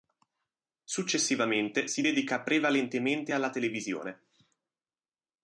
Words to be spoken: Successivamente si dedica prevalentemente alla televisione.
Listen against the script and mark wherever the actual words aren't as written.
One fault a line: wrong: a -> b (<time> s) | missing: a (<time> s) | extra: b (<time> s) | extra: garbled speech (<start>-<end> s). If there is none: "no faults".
no faults